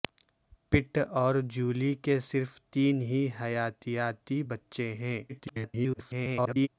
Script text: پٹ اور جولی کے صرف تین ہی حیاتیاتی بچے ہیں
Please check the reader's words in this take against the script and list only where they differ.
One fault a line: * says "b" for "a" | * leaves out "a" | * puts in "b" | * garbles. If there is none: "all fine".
* garbles